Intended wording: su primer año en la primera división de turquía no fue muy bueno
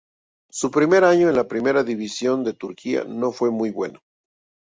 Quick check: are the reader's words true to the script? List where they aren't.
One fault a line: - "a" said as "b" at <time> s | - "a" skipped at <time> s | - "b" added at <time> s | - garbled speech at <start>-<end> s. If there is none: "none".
none